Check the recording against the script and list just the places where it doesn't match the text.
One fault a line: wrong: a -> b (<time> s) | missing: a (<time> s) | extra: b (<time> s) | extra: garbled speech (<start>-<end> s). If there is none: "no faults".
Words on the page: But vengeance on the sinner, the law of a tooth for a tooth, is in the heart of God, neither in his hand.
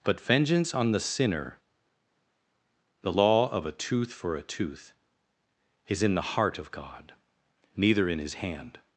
no faults